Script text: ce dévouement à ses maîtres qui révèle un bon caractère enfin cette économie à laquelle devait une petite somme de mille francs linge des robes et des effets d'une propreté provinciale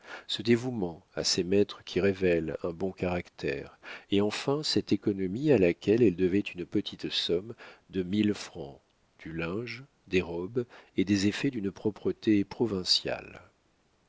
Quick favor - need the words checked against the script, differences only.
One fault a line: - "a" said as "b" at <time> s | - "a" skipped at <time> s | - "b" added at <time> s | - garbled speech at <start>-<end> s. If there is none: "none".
- "et" added at 4.1 s
- "elle" added at 6.0 s
- "du" added at 9.2 s